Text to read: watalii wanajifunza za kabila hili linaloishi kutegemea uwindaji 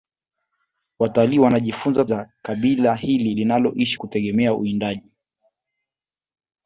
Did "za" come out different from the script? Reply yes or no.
no